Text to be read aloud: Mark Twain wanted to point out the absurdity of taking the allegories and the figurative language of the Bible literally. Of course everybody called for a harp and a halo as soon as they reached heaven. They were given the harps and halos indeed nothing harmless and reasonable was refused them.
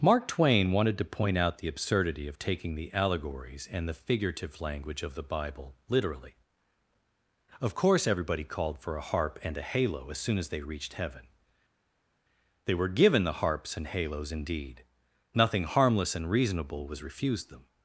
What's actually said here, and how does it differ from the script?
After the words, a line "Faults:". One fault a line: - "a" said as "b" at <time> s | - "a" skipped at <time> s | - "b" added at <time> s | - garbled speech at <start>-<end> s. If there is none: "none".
Mark Twain wanted to point out the absurdity of taking the allegories and the figurative language of the Bible literally. Of course everybody called for a harp and a halo as soon as they reached heaven. They were given the harps and halos indeed nothing harmless and reasonable was refused them.
Faults:
none